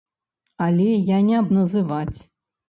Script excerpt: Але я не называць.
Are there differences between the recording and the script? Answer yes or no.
no